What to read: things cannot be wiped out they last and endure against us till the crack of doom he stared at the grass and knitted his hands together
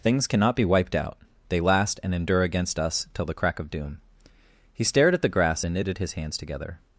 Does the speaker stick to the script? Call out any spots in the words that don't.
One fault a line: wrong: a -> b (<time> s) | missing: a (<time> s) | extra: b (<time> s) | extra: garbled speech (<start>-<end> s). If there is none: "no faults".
no faults